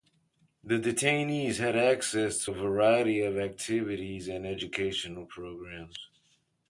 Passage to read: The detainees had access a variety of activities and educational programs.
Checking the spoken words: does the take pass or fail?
pass